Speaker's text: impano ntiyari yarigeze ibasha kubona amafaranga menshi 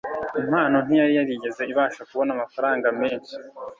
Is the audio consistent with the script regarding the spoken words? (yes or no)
yes